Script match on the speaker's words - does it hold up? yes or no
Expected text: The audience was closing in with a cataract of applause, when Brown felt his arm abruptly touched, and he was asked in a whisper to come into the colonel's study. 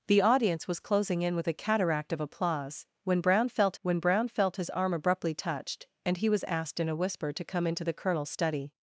no